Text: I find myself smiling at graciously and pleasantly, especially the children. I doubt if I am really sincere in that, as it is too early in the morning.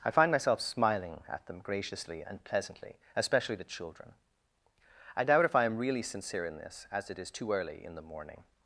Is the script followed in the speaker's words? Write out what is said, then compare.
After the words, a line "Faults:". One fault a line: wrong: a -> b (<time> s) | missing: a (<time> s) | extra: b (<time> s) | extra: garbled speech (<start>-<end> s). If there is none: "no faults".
I find myself smiling at them graciously and pleasantly, especially the children. I doubt if I am really sincere in this, as it is too early in the morning.
Faults:
extra: them (1.4 s)
wrong: that -> this (6.6 s)